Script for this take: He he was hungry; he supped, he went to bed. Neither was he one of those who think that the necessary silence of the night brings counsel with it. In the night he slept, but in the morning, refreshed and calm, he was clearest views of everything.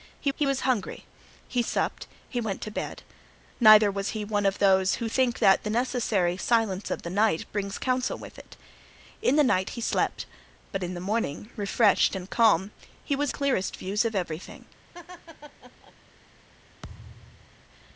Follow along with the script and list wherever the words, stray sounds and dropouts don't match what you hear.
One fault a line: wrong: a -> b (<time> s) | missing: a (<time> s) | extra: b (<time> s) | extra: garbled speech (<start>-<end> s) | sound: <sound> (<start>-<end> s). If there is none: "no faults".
sound: laugh (14.9-15.9 s)
sound: thud (16.8-17.6 s)